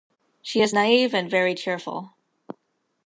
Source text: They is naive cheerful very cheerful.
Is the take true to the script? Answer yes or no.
no